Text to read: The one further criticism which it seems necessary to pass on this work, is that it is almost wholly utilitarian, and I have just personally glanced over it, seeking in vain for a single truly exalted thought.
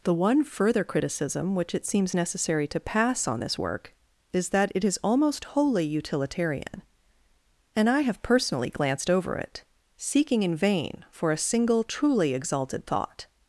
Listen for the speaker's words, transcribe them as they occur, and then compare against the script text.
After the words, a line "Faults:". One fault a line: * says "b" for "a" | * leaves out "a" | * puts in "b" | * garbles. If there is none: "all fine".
The one further criticism which it seems necessary to pass on this work, is that it is almost wholly utilitarian, and I have personally glanced over it, seeking in vain for a single truly exalted thought.
Faults:
* leaves out "just"